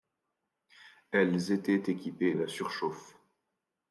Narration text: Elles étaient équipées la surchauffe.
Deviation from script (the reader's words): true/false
false